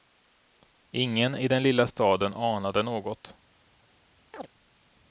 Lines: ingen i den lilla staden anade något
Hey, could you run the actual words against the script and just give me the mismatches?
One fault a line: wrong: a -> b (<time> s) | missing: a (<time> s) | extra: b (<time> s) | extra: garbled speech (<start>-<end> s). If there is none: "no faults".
no faults